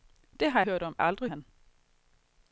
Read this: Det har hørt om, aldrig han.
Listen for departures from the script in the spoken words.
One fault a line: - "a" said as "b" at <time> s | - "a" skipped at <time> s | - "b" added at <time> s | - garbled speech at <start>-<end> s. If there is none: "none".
none